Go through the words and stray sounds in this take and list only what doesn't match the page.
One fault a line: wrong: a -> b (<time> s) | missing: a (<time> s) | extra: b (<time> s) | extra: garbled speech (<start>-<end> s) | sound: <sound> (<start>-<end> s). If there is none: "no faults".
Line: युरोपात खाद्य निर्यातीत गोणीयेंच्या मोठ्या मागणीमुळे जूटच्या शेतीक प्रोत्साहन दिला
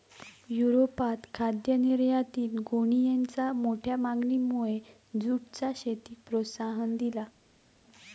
no faults